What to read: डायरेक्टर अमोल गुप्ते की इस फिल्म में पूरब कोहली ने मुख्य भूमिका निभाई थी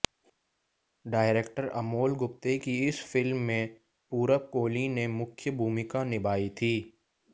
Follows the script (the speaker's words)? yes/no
yes